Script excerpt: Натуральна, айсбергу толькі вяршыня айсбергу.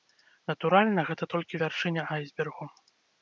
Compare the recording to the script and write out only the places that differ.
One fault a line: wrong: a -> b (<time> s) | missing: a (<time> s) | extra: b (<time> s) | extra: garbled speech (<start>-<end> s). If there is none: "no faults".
wrong: айсбергу -> гэта (1.1 s)